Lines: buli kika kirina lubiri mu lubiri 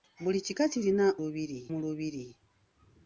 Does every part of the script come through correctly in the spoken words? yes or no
yes